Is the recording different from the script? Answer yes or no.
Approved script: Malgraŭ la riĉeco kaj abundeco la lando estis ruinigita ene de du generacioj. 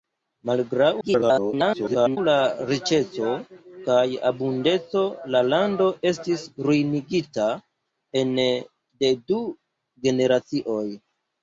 yes